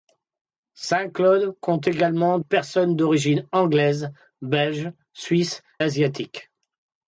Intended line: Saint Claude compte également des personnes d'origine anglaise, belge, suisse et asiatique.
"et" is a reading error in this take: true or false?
true